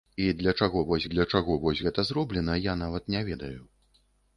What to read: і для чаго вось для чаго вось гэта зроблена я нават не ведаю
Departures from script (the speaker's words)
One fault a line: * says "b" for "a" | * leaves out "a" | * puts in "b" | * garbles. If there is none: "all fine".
all fine